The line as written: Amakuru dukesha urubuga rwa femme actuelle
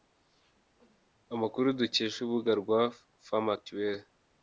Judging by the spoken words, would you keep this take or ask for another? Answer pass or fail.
pass